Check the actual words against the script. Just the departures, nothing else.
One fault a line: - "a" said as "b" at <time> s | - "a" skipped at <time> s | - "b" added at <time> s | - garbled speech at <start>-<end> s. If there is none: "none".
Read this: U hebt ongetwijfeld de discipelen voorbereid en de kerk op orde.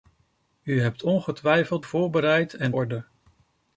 - "de discipelen" skipped at 1.8 s
- "de kerk op" skipped at 2.7 s